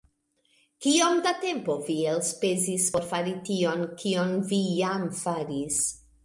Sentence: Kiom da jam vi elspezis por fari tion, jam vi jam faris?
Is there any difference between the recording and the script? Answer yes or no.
yes